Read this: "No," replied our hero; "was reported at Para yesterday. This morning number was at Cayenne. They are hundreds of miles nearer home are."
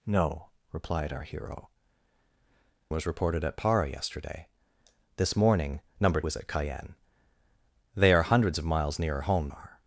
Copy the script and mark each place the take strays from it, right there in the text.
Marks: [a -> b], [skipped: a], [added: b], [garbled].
"No," replied our hero; "was reported at Para yesterday. This morning number was at Cayenne. They are hundreds of miles nearer home are."